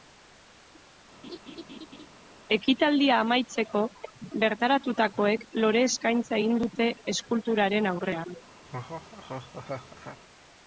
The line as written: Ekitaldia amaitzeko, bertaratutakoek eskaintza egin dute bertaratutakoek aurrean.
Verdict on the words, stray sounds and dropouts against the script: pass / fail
fail